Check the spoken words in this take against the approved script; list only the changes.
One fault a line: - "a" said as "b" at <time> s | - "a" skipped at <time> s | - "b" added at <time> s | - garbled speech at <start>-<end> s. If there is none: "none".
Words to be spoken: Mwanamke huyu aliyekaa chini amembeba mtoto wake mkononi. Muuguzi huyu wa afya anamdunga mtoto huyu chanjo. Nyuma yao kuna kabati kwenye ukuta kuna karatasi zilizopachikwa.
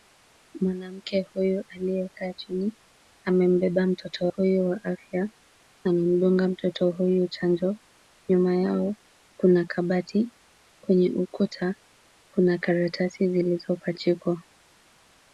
- "wake mkononi Muuguzi" skipped at 4.3 s